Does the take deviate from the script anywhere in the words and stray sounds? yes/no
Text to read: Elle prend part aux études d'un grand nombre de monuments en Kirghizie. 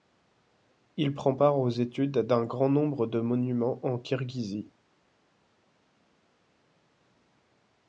yes